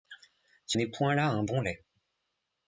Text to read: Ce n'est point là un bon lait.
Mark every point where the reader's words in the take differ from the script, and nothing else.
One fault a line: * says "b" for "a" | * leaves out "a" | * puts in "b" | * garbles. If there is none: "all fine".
all fine